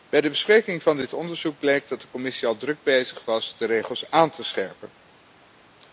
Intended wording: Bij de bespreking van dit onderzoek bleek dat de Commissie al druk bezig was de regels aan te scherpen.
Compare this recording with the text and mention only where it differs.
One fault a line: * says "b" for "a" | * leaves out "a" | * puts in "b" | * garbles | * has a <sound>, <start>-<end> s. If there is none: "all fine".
all fine